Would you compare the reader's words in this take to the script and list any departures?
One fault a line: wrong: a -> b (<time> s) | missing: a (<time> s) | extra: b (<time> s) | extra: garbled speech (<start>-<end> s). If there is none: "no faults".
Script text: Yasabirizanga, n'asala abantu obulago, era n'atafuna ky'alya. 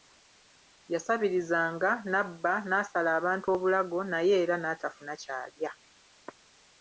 extra: n'abba (2.1 s)
extra: naye (4.1 s)